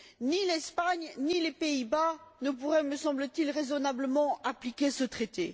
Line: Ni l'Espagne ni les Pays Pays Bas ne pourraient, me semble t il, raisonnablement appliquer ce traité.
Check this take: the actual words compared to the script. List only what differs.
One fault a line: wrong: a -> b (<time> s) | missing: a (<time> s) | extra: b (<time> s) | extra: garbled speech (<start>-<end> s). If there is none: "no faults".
missing: Pays (1.9 s)